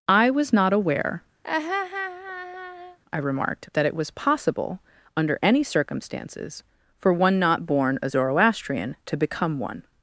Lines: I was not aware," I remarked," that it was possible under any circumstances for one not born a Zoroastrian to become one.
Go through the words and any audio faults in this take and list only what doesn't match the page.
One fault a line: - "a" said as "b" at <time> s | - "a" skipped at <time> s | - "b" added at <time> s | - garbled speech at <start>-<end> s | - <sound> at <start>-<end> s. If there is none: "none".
- laugh at 1.4-3.0 s